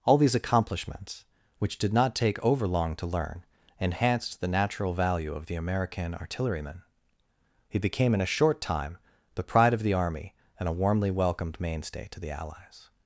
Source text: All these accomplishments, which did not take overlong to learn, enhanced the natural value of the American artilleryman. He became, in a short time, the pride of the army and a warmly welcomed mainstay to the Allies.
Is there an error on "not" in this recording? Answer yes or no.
no